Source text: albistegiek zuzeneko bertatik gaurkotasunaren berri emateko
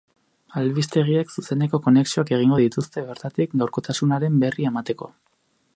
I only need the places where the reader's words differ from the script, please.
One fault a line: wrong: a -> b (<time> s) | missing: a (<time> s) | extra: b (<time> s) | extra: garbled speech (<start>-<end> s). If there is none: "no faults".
extra: konexioak egingo dituzte (1.9 s)